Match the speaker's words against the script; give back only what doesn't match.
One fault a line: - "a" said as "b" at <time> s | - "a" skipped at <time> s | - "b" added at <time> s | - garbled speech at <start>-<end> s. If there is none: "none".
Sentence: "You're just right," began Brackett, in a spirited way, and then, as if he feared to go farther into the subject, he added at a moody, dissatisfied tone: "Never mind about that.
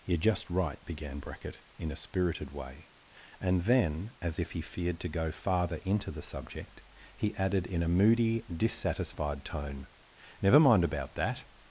- "at" said as "in" at 7.7 s